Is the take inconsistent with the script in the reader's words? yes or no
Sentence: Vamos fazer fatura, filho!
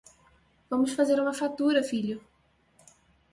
yes